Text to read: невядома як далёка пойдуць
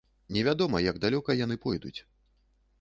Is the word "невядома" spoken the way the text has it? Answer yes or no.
yes